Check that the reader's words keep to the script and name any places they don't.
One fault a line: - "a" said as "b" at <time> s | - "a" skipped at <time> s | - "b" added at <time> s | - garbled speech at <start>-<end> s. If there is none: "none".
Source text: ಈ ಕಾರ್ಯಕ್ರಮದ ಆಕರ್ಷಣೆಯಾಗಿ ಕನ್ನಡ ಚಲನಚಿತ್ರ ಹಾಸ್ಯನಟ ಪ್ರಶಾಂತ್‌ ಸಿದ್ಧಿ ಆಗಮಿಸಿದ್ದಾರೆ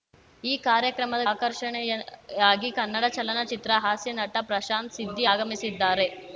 none